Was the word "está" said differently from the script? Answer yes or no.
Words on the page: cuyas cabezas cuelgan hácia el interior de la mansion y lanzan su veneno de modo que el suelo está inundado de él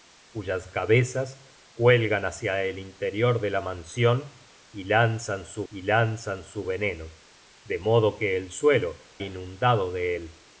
yes